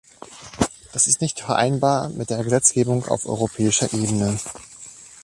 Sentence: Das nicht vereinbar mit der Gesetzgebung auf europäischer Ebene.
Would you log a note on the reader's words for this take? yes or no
yes